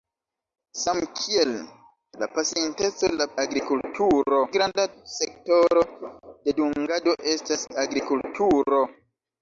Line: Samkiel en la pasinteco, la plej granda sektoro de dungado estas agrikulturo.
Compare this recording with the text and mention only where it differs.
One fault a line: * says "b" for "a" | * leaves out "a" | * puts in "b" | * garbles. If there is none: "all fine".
* leaves out "en"
* says "agrikulturo" for "plej"